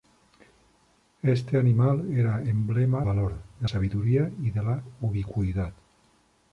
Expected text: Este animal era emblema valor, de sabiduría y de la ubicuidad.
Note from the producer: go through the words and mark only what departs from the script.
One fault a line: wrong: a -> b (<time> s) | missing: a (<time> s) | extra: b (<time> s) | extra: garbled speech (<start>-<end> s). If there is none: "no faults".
no faults